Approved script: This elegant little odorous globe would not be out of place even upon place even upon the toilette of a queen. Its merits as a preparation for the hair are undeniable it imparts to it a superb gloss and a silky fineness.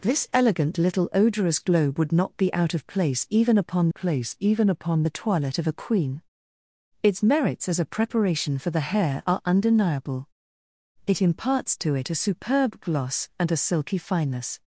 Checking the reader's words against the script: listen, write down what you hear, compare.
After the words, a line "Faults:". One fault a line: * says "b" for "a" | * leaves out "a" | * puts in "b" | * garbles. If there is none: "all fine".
This elegant little odorous globe would not be out of place even upon place even upon the toilette of a queen. Its merits as a preparation for the hair are undeniable it imparts to it a superb gloss and a silky fineness.
Faults:
all fine